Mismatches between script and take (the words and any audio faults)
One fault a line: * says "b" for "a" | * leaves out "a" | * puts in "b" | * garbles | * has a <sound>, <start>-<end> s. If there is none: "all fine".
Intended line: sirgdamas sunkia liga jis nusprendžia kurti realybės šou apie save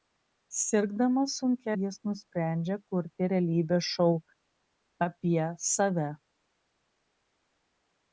* leaves out "liga"